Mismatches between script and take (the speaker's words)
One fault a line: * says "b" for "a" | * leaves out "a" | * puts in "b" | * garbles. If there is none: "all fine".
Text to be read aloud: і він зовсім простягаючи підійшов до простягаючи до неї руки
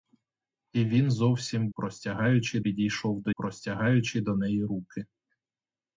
all fine